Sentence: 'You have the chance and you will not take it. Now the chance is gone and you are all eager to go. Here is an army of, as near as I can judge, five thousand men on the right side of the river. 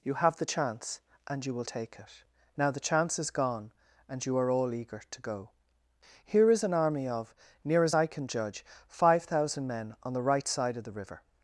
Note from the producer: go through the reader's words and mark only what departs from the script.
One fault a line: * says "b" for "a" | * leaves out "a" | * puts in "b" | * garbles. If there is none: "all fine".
* leaves out "not"
* leaves out "as"